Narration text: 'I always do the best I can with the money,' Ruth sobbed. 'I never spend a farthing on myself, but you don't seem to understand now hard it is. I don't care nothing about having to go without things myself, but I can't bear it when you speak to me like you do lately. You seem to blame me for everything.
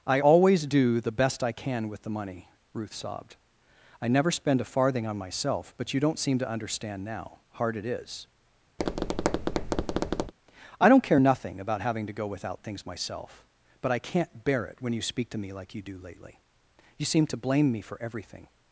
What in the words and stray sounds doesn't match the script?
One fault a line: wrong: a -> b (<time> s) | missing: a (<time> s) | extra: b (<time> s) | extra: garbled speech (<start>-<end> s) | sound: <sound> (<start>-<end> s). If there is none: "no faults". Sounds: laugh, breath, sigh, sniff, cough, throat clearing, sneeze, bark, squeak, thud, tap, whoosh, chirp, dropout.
sound: tap (8.8-10.3 s)